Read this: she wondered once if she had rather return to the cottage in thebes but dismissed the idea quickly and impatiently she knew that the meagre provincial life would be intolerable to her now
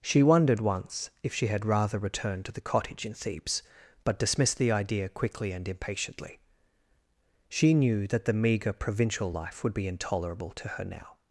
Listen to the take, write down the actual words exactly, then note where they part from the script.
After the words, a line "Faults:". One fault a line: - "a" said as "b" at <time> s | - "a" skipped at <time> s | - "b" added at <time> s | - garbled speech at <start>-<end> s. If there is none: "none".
she wondered once if she had rather return to the cottage in thebes but dismissed the idea quickly and impatiently she knew that the meagre provincial life would be intolerable to her now
Faults:
none